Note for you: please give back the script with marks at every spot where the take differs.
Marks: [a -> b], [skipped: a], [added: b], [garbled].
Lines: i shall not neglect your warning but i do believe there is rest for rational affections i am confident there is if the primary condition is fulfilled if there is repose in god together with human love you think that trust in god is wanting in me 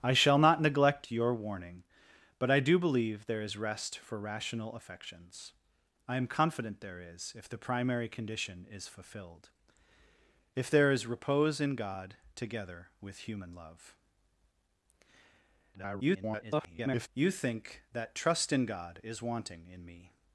i shall not neglect your warning but i do believe there is rest for rational affections i am confident there is if the primary condition is fulfilled if there is repose in god together with human love [garbled] you think that trust in god is wanting in me